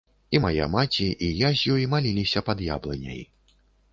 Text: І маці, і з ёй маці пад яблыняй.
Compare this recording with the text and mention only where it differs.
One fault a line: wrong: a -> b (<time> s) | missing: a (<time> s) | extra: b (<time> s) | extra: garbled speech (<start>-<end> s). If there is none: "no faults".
extra: мая (0.4 s)
extra: я (1.4 s)
wrong: маці -> маліліся (1.9 s)